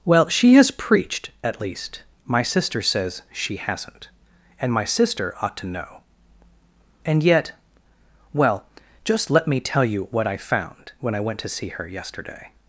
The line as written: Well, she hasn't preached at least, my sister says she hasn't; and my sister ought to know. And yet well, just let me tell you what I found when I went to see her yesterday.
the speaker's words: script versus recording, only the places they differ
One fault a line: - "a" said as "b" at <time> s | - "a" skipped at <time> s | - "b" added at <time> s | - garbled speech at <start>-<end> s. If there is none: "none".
- "hasn't" said as "has" at 0.6 s